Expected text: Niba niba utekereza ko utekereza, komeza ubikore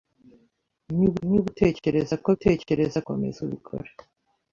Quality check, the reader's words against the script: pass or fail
pass